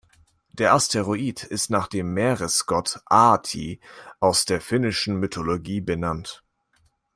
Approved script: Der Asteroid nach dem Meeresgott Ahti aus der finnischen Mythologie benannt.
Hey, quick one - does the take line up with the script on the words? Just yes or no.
no